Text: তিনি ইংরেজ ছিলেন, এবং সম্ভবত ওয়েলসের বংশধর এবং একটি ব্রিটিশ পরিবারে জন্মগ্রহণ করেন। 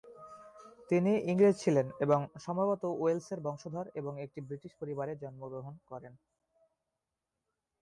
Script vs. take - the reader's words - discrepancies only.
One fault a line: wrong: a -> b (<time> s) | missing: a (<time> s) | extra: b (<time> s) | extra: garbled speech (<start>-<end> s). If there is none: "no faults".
no faults